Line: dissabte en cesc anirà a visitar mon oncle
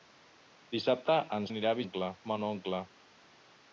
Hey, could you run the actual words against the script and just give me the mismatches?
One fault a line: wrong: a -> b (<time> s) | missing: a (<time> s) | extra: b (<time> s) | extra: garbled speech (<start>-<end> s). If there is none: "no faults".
missing: cesc (1.5 s)
wrong: visitar -> oncle (1.8 s)